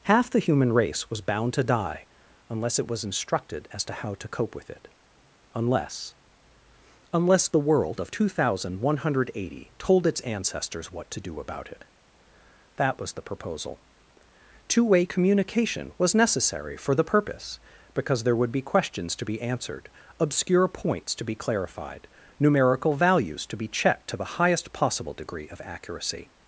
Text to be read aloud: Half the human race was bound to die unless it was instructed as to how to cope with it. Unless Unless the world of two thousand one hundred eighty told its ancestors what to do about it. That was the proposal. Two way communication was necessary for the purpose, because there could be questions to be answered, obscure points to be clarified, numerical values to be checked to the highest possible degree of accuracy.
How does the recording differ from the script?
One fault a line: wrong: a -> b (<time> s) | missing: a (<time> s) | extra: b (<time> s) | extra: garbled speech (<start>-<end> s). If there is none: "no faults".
wrong: could -> would (18.4 s)